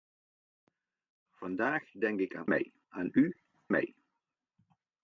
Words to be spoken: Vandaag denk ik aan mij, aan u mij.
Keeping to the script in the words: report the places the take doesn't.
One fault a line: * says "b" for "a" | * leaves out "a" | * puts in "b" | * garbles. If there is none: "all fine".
all fine